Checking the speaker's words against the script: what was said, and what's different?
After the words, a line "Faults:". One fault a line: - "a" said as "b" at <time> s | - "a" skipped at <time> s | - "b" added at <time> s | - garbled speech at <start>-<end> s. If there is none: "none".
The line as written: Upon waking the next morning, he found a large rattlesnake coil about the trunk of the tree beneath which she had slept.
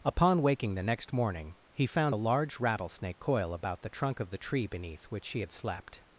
Upon waking the next morning, he found a large rattlesnake coil about the trunk of the tree beneath which she had slept.
Faults:
none